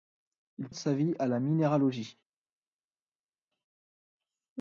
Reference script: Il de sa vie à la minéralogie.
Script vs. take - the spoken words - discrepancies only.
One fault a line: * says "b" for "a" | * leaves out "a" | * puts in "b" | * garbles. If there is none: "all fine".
all fine